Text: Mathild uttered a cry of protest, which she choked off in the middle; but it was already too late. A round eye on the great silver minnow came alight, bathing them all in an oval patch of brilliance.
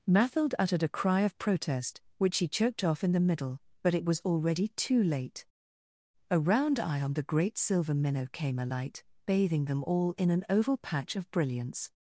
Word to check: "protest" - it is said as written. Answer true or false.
true